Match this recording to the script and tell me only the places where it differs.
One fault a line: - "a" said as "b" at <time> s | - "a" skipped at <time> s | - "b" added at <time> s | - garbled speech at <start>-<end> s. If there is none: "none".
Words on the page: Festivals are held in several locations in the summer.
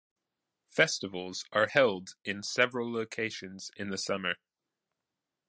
none